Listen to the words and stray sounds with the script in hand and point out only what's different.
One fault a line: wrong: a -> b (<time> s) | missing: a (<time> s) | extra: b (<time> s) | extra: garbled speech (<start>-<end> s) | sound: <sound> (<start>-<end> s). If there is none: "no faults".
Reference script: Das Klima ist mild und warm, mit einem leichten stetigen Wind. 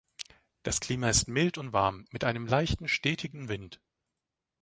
no faults